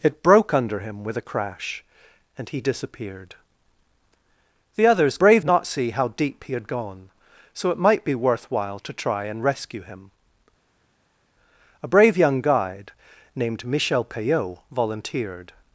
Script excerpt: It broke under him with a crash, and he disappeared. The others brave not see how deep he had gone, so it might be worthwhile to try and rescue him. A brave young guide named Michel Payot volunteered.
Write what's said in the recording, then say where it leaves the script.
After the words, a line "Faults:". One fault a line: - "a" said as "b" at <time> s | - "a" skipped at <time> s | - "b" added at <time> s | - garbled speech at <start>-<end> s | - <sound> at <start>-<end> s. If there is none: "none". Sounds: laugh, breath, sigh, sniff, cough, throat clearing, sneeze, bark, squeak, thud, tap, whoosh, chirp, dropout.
It broke under him with a crash, and he disappeared. The others brave not see how deep he had gone, so it might be worthwhile to try and rescue him. A brave young guide named Michel Payot volunteered.
Faults:
none